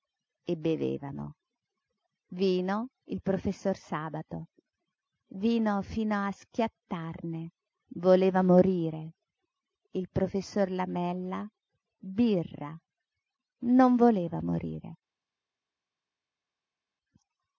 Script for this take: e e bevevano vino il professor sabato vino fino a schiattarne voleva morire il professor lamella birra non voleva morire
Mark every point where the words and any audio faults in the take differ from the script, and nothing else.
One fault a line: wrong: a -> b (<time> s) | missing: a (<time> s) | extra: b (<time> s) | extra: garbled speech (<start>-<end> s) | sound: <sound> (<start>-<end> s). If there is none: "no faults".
missing: e (0.6 s)